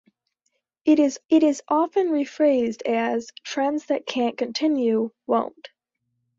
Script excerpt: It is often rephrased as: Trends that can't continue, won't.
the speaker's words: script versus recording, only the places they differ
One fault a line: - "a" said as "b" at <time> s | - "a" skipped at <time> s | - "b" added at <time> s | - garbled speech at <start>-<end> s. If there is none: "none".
- "it is" added at 1.3 s